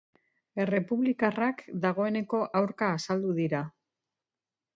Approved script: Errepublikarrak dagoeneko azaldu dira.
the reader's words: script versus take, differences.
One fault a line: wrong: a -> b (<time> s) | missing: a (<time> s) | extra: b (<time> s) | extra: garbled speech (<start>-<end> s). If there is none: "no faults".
extra: aurka (2.6 s)